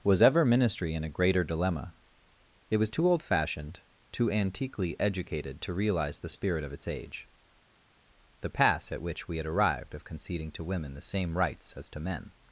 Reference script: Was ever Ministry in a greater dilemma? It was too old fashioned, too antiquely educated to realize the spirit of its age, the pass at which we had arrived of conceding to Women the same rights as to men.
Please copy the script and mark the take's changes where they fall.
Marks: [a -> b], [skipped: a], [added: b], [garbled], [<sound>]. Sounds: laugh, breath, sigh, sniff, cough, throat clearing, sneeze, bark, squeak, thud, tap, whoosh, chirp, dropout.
Was ever Ministry in a greater dilemma? It was too old fashioned, too antiquely educated to realize the spirit of its age, the pass at which we had arrived of conceding to Women the same rights as to men.